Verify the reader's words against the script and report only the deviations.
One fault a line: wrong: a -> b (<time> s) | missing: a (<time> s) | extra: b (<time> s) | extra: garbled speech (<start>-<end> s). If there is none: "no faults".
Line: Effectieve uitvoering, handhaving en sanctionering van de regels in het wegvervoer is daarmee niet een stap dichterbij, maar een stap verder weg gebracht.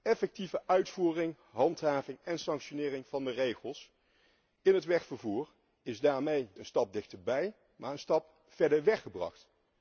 missing: niet (6.5 s)